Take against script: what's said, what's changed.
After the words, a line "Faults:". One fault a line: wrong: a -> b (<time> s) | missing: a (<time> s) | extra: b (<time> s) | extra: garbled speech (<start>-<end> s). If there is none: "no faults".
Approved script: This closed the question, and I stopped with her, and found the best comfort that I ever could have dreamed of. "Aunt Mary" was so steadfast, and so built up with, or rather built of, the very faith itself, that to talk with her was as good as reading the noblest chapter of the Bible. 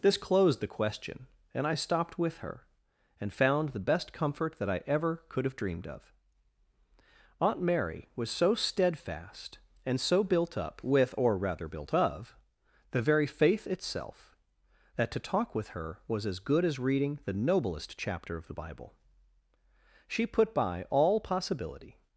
This closed the question, and I stopped with her, and found the best comfort that I ever could have dreamed of. "Aunt Mary" was so steadfast, and so built up with, or rather built of, the very faith itself, that to talk with her was as good as reading the noblest chapter of the Bible. She put by all possibility
Faults:
extra: She put by all possibility (20.1 s)